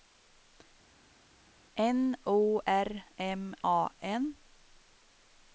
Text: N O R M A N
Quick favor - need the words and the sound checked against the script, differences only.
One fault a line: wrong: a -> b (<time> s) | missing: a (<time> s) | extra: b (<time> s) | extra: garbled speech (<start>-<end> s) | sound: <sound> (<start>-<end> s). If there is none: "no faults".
no faults